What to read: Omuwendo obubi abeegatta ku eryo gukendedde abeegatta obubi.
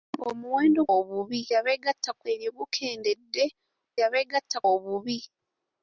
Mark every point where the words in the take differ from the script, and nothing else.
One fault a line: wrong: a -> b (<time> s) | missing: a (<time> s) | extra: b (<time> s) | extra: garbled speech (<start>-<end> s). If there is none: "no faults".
no faults